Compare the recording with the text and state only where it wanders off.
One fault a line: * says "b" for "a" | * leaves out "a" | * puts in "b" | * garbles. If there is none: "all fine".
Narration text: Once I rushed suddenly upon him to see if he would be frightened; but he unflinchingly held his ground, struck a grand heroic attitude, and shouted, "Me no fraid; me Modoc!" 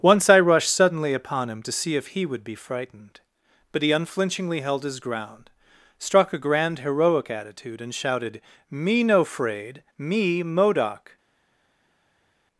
all fine